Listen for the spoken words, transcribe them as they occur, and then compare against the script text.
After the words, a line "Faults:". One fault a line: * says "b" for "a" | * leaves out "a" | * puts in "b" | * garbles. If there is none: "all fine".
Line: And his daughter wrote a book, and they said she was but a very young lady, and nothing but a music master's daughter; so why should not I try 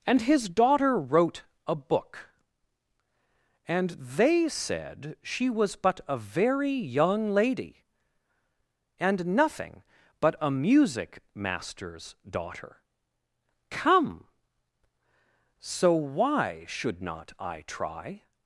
And his daughter wrote a book, and they said she was but a very young lady, and nothing but a music master's daughter; come so why should not I try
Faults:
* puts in "come"